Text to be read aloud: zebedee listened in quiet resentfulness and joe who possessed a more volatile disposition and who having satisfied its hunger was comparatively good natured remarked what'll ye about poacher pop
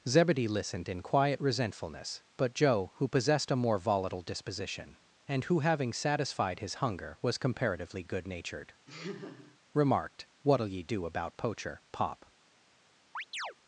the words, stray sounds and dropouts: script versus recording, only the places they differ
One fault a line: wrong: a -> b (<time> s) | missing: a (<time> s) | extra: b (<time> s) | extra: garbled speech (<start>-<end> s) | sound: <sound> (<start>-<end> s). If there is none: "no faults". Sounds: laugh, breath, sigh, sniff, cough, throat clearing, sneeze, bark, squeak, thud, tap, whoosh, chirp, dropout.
wrong: and -> but (2.4 s)
wrong: its -> his (6.6 s)
sound: laugh (8.9-9.6 s)
extra: do (10.8 s)
sound: chirp (13.1-13.5 s)